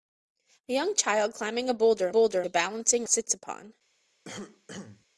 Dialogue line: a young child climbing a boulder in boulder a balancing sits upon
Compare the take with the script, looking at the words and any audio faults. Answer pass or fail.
fail